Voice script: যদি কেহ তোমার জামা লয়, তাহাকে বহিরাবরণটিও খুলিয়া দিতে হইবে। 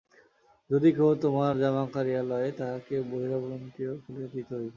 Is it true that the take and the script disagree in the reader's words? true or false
true